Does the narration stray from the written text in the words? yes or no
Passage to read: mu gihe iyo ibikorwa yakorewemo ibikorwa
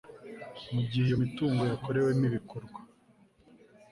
yes